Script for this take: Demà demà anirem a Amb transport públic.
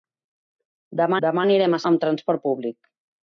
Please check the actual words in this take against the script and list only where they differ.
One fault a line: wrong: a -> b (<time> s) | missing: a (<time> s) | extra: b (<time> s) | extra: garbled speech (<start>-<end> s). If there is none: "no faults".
no faults